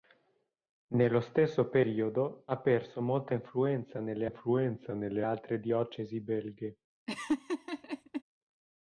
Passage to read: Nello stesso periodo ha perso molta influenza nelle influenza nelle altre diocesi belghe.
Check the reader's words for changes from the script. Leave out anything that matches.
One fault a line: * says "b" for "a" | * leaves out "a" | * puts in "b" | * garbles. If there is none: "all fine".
all fine